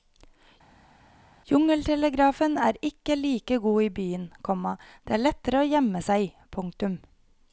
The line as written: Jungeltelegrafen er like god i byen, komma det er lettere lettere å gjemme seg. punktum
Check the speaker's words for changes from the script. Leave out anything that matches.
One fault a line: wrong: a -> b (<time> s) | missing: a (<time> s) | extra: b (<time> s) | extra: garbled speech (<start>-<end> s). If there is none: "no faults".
extra: ikke (2.9 s)
missing: lettere (5.6 s)